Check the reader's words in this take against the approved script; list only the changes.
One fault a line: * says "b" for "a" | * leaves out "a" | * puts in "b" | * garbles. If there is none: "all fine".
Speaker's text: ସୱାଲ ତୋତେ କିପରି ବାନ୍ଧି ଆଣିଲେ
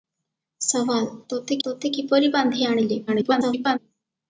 * puts in "ତୋତେ"
* garbles